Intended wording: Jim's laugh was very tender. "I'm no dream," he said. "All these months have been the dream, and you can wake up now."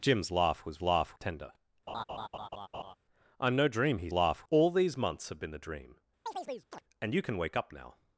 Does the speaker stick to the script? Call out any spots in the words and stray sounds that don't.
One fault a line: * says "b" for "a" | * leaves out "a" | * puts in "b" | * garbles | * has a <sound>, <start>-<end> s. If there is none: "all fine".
* says "laugh" for "very"
* has a laugh, 1.9-2.9 s
* says "laugh" for "said"
* has a chirp, 6.3-6.8 s